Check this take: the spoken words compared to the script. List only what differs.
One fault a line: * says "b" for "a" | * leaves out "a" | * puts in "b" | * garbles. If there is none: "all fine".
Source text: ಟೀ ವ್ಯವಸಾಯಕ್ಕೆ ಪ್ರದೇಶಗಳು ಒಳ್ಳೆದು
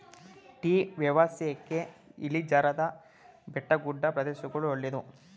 * puts in "ಇಳಿಜಾರಾದ ಬೆಟ್ಟಗುಡ್ಡ"